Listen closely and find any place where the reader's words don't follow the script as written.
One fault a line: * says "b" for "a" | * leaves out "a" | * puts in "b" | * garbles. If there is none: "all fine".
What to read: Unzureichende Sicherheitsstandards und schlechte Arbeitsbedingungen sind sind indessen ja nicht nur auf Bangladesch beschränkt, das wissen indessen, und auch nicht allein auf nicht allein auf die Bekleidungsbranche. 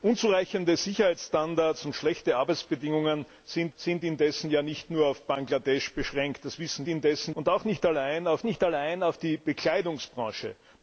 all fine